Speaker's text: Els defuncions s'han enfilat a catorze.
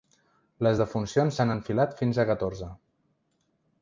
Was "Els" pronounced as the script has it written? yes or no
no